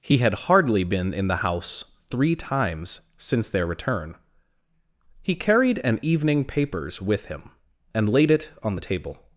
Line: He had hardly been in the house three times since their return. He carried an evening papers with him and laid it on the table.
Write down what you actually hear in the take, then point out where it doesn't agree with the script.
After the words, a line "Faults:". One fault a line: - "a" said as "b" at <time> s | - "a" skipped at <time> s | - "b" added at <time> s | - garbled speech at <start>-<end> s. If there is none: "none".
He had hardly been in the house three times since their return. He carried an evening papers with him and laid it on the table.
Faults:
none